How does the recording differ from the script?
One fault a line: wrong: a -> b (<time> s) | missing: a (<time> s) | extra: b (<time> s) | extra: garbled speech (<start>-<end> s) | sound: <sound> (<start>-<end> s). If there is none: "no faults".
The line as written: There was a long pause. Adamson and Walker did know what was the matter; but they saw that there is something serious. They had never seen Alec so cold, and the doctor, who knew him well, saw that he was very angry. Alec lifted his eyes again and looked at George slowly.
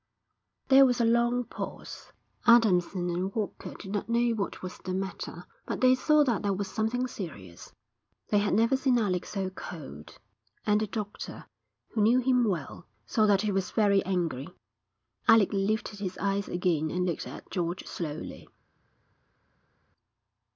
extra: not (3.9 s)
wrong: is -> was (6.5 s)